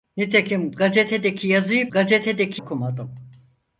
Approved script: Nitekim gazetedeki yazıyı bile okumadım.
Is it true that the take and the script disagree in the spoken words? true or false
true